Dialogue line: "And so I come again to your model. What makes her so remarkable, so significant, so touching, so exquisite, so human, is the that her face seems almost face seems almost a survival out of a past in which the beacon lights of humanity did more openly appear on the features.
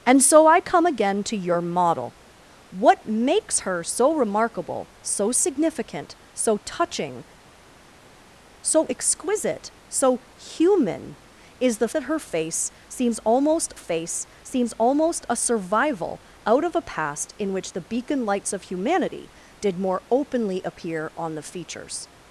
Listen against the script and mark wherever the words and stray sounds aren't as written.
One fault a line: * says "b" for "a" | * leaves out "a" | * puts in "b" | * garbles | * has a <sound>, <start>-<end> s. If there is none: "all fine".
all fine